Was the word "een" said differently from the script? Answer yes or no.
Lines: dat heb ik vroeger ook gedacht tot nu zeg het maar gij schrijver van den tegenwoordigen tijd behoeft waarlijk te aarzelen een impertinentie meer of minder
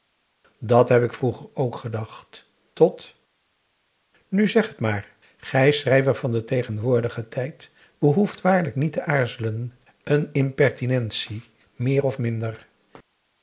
no